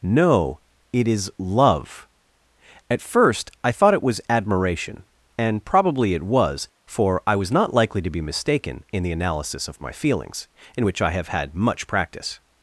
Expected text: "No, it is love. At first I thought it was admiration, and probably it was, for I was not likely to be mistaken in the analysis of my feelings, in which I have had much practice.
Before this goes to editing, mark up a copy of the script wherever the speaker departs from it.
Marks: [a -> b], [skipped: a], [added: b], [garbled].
"No, it is love. At first I thought it was admiration, and probably it was, for I was not likely to be mistaken in the analysis of my feelings, in which I have had much practice.